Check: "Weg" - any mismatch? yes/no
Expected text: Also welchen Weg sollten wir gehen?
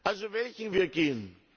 yes